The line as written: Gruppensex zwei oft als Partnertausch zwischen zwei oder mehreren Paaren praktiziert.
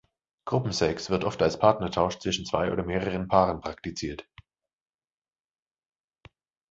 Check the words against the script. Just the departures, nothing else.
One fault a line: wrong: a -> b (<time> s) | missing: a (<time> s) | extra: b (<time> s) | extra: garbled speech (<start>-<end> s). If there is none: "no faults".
wrong: zwei -> wird (1.1 s)